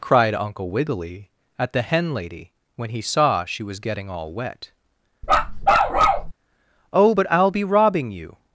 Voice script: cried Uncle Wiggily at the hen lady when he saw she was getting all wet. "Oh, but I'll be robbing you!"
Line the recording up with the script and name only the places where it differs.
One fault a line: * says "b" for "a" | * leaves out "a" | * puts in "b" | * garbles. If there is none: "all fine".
all fine